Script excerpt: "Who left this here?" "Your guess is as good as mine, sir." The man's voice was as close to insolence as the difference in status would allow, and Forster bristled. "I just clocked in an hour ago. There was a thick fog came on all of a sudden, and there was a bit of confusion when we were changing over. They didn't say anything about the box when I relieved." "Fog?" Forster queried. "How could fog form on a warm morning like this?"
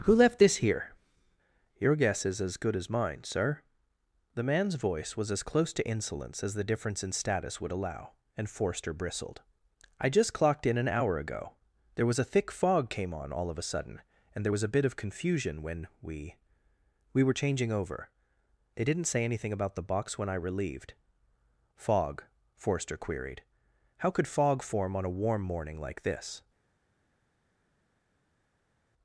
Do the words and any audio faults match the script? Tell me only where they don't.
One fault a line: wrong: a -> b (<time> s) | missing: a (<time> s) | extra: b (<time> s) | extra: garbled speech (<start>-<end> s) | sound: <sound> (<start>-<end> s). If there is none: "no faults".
extra: we (17.1 s)